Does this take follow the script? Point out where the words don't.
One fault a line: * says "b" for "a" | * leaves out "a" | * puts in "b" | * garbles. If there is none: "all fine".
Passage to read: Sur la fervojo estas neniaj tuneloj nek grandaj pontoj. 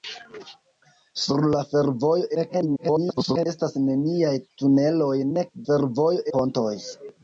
* garbles
* says "fervojo" for "grandaj"